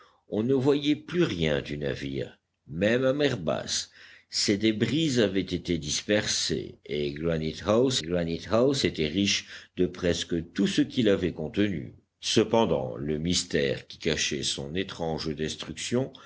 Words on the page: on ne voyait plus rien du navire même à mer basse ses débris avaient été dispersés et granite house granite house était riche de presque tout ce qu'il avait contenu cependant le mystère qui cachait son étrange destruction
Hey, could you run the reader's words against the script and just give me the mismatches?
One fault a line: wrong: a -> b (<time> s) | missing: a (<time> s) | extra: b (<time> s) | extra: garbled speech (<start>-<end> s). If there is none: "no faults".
no faults